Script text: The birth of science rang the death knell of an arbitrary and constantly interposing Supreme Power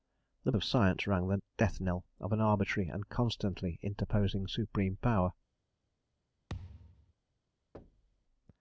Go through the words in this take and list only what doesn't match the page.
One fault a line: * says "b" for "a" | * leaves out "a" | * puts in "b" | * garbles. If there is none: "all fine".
* leaves out "birth"